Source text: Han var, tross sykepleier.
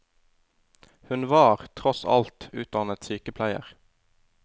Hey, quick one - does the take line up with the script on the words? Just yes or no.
no